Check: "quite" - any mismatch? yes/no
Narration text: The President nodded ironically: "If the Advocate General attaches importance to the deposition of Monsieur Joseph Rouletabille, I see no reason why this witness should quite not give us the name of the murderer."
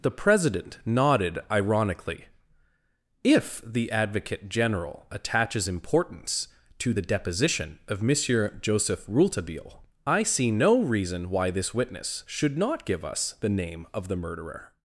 yes